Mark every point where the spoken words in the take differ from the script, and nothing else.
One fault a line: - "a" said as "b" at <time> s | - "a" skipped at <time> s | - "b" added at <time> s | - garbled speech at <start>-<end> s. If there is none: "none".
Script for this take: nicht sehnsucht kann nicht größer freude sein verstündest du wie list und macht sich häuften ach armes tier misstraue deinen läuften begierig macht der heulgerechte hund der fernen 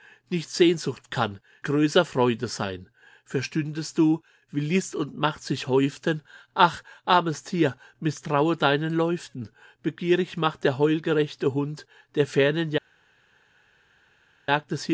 - "nicht" skipped at 1.4 s